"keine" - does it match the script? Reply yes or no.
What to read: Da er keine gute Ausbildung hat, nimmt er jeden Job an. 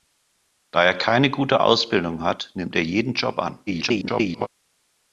yes